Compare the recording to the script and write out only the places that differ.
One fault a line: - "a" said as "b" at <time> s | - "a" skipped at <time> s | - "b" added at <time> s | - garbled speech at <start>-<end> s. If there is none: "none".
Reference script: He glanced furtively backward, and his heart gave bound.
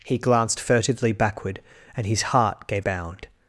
none